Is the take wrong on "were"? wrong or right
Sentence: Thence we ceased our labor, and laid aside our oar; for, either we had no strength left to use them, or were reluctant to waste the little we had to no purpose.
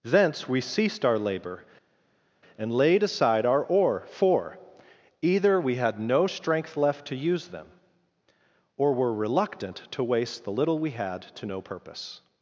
right